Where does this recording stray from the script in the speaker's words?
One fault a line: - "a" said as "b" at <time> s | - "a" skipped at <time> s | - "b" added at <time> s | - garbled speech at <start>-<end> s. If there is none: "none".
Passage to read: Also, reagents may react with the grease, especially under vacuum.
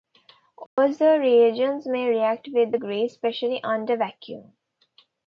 none